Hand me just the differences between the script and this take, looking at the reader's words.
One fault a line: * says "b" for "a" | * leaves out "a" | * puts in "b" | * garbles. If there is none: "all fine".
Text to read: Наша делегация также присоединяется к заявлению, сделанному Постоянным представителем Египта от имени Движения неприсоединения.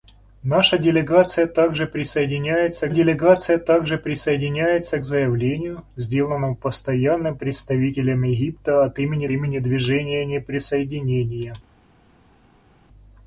* puts in "делегация также присоединяется"
* puts in "имени"